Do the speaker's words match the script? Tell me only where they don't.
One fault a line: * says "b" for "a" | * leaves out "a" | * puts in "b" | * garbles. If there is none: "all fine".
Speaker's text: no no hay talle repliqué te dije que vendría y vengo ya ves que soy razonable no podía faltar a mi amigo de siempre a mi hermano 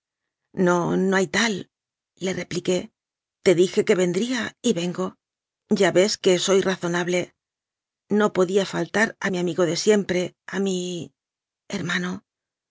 all fine